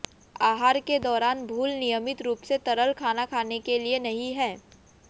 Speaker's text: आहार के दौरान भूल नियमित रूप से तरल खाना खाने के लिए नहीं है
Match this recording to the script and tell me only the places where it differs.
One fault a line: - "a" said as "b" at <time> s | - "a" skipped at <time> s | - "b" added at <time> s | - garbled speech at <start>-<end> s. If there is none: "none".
none